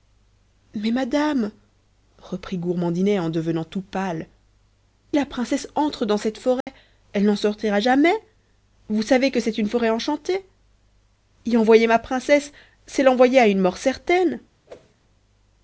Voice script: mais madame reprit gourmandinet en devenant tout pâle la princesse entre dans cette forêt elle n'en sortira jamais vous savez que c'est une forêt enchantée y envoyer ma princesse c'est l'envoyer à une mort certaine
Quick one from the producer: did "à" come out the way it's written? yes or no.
yes